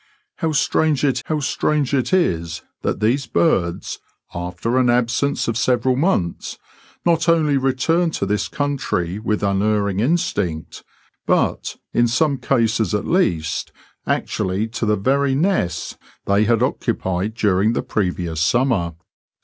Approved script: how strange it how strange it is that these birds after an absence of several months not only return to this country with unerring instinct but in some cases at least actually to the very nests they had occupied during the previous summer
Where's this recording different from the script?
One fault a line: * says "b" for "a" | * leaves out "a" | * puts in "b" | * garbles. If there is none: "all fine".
all fine